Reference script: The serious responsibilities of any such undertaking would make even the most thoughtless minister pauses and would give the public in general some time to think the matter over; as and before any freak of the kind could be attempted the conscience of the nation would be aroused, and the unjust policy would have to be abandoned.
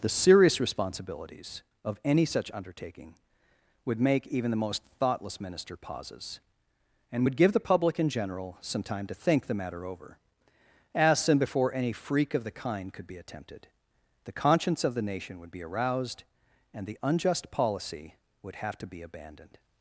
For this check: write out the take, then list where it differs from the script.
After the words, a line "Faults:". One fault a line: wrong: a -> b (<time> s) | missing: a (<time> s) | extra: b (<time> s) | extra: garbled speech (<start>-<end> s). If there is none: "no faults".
The serious responsibilities of any such undertaking would make even the most thoughtless minister pauses and would give the public in general some time to think the matter over; as and before any freak of the kind could be attempted the conscience of the nation would be aroused, and the unjust policy would have to be abandoned.
Faults:
no faults